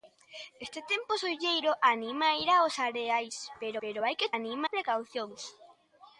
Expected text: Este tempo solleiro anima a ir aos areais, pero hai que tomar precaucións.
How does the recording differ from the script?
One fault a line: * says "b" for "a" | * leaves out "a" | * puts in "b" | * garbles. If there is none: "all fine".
* puts in "pero"
* says "anima" for "tomar"